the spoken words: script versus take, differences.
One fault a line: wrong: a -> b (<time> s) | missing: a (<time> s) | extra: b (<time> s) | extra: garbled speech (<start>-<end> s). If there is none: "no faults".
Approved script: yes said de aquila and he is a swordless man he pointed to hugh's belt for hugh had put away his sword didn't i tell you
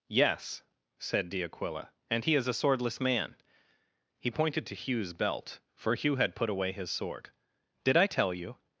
wrong: didn't -> did (7.8 s)